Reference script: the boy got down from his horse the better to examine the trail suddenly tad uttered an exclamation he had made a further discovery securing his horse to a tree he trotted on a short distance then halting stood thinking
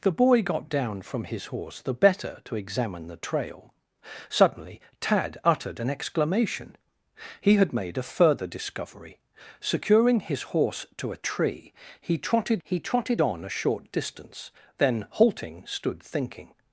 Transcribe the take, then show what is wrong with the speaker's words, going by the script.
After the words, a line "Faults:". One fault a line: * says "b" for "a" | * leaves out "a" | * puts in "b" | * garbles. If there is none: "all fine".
the boy got down from his horse the better to examine the trail suddenly tad uttered an exclamation he had made a further discovery securing his horse to a tree he trotted he trotted on a short distance then halting stood thinking
Faults:
* puts in "he trotted"